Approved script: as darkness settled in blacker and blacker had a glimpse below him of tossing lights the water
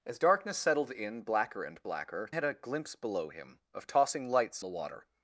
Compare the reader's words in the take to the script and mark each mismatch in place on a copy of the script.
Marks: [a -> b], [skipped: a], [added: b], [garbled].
as darkness settled in blacker and blacker had a glimpse below him of tossing lights the water